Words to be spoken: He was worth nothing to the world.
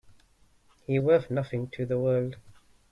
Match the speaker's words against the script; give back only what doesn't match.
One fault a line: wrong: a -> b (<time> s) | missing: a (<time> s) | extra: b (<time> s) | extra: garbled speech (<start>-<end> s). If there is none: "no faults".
missing: was (1.0 s)